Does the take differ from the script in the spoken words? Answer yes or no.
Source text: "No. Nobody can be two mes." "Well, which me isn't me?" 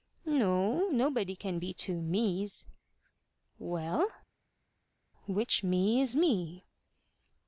yes